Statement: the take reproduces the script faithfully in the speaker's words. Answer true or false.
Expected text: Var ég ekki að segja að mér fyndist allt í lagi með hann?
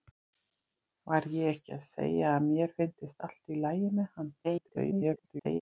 false